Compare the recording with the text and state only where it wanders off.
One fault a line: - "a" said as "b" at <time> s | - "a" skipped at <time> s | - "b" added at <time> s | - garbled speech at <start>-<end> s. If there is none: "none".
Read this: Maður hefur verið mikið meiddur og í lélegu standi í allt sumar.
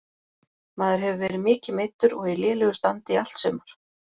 none